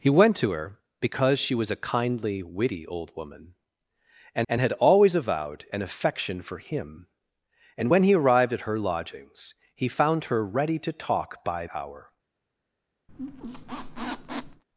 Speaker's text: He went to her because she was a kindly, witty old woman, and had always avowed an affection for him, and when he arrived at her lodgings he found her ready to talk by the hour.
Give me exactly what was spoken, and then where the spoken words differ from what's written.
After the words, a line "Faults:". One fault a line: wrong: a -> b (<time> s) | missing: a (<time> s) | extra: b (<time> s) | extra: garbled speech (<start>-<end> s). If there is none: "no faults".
He went to her because she was a kindly, witty old woman, and and had always avowed an affection for him, and when he arrived at her lodgings he found her ready to talk by hour.
Faults:
extra: and (4.5 s)
missing: the (11.7 s)